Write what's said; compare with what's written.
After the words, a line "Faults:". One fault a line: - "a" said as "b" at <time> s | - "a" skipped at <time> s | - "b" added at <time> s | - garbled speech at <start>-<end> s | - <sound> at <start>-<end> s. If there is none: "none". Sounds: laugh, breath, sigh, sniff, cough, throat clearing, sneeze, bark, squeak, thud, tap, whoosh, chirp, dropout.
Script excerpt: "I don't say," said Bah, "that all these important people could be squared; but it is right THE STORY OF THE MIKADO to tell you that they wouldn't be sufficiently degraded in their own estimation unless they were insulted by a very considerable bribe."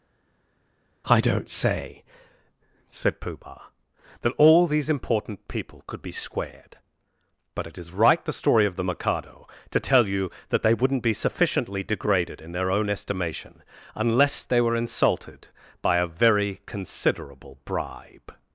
"I don't say," said Pooh Bah, "that all these important people could be squared; but it is right THE STORY OF THE MIKADO to tell you that they wouldn't be sufficiently degraded in their own estimation unless they were insulted by a very considerable bribe."
Faults:
- "Pooh" added at 3.2 s